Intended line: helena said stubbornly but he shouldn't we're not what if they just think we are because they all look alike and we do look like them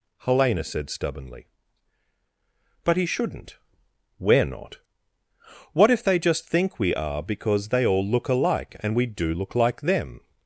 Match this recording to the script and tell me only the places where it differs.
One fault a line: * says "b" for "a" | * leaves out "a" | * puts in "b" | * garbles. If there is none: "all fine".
all fine